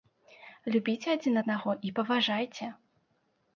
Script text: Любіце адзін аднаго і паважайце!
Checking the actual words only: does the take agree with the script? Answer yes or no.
yes